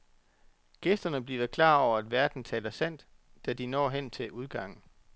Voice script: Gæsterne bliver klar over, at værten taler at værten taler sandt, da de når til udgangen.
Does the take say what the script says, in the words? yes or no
no